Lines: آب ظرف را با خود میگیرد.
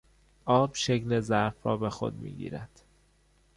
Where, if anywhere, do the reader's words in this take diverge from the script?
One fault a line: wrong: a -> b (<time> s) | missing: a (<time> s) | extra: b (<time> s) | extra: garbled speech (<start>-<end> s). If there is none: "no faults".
extra: شکل (0.7 s)
wrong: با -> به (1.8 s)